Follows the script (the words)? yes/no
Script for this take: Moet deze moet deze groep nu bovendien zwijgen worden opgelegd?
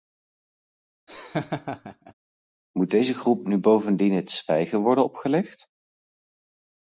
no